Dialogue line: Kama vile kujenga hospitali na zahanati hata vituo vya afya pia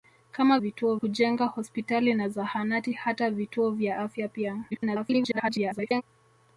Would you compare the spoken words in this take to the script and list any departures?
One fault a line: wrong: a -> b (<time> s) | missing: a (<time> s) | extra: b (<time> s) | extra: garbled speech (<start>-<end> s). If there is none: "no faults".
wrong: vile -> vituo (0.6 s)
extra: garbled speech (4.7-6.0 s)